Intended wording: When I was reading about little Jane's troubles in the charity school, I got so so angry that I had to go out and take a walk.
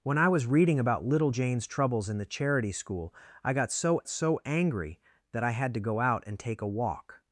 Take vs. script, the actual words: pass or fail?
pass